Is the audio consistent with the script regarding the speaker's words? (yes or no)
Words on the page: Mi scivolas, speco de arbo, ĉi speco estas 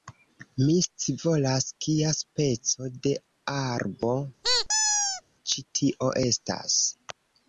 no